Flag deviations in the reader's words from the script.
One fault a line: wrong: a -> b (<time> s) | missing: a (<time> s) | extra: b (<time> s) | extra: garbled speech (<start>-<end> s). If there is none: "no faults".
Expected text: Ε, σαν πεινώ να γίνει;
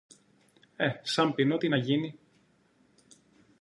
extra: τι (1.5 s)